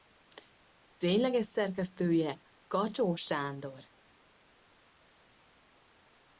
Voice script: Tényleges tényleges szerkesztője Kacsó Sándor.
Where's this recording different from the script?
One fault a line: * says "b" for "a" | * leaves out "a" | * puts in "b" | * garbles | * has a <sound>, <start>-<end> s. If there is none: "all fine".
* leaves out "tényleges"